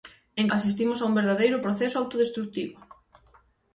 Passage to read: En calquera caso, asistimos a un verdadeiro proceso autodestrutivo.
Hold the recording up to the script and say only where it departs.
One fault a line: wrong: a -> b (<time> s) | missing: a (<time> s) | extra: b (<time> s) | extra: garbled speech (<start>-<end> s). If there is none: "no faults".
missing: calquera caso (0.5 s)